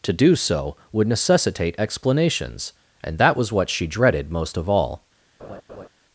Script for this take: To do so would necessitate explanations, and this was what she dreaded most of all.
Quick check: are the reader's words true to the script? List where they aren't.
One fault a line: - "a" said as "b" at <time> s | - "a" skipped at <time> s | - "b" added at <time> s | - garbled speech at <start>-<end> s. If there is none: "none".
- "this" said as "that" at 3.2 s